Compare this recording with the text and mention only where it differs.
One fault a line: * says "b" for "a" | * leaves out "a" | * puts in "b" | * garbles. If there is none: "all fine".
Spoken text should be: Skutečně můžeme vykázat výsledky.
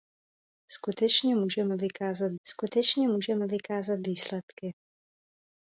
* puts in "skutečně můžeme vykázat"